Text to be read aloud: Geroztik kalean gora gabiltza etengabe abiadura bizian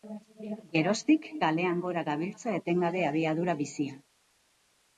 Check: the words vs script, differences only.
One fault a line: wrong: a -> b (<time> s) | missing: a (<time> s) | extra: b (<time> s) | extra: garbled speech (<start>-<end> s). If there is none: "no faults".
no faults